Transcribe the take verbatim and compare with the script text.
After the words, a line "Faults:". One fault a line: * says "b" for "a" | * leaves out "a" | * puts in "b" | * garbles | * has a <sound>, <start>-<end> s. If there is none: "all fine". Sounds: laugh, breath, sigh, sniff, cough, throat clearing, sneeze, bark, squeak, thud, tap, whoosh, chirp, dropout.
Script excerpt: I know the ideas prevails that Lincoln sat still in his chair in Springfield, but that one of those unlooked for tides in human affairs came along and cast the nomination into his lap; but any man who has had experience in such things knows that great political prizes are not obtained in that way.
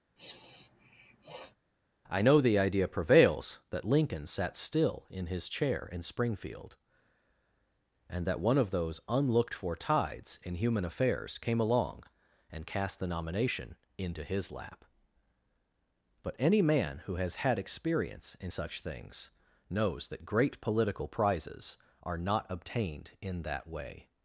I know the idea prevails that Lincoln sat still in his chair in Springfield, and that one of those unlooked for tides in human affairs came along and cast the nomination into his lap; but any man who has had experience in such things knows that great political prizes are not obtained in that way.
Faults:
* has a sniff, 0.2-1.5 s
* says "idea" for "ideas"
* says "and" for "but"